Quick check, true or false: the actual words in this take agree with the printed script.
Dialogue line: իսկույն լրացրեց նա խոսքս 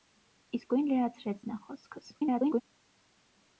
false